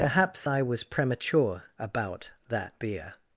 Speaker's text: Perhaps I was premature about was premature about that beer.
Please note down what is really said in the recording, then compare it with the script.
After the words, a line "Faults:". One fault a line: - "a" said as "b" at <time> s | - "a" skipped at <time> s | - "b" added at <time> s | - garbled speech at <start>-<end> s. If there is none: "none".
Perhaps I was premature about that beer.
Faults:
- "was premature about" skipped at 2.3 s